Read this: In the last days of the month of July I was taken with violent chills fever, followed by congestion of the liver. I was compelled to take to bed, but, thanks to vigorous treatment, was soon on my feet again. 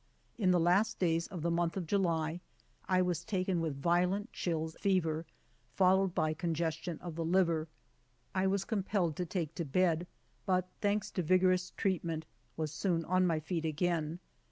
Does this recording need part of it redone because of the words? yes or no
no